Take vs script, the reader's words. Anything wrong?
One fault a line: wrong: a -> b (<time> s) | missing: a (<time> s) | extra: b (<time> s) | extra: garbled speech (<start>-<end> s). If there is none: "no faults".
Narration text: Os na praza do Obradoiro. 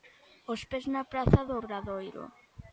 extra: pés (0.7 s)